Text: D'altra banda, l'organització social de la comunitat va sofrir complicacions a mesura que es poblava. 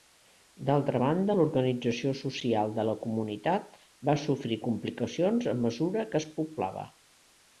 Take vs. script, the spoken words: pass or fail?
pass